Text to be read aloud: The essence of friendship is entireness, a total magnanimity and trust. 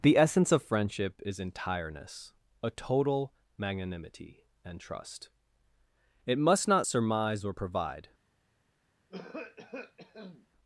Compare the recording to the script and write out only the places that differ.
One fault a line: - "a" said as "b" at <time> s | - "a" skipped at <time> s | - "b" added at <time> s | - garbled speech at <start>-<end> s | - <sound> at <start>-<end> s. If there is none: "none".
- "It must not surmise or provide" added at 6.2 s
- cough at 9.1-10.5 s